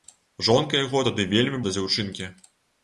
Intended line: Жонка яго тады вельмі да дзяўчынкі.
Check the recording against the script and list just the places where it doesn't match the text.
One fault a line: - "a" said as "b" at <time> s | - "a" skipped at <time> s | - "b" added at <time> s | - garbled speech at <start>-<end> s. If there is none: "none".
none